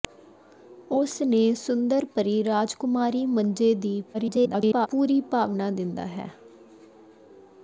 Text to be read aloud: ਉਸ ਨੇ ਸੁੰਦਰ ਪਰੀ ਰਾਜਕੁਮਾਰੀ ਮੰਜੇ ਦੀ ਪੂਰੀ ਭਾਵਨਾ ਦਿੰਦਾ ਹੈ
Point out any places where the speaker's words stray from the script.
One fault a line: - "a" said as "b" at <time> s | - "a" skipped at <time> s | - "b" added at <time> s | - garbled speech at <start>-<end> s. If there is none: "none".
- garbled speech at 4.1-4.9 s